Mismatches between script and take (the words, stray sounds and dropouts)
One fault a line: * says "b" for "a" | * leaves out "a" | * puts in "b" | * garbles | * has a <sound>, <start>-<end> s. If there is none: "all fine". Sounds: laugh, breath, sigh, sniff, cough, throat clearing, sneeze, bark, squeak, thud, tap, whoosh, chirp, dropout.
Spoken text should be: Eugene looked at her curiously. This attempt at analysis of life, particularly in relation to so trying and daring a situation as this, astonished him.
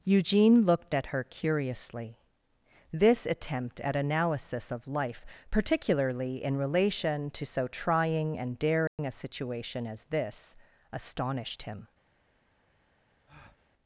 * has a dropout, 8.9-9.0 s
* has a breath, 13.3-13.7 s